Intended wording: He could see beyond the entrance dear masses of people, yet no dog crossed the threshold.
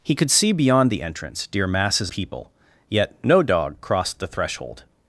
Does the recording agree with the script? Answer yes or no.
no